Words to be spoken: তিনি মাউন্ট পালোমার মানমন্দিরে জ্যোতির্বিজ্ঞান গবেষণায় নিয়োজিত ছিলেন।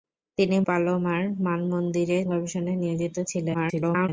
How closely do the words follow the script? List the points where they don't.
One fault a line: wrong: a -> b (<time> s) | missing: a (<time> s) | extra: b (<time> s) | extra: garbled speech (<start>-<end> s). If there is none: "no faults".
missing: মাউন্ট (0.6 s)
missing: জ্যোতির্বিজ্ঞান (2.2 s)
extra: garbled speech (3.5-4.1 s)